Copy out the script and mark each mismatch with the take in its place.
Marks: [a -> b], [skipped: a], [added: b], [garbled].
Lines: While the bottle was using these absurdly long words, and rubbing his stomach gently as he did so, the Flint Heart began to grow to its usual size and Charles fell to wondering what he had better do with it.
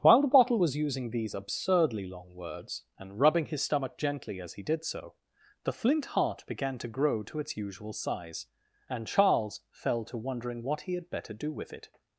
While the bottle was using these absurdly long words, and rubbing his stomach gently as he did so, the Flint Heart began to grow to its usual size and Charles fell to wondering what he had better do with it.